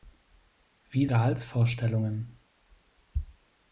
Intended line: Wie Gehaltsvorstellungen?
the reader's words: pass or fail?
pass